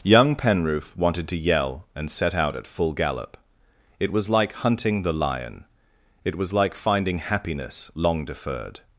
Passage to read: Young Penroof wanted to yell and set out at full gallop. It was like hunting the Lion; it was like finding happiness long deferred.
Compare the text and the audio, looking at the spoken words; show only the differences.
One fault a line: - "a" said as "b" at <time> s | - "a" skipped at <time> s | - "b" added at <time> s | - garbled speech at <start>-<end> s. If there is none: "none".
none